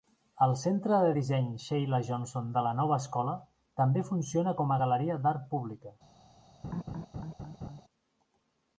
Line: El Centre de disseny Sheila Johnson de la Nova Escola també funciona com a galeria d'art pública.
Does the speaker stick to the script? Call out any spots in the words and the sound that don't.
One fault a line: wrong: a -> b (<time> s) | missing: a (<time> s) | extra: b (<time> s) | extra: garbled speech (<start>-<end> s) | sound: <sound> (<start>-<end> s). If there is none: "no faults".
sound: laugh (6.6-7.8 s)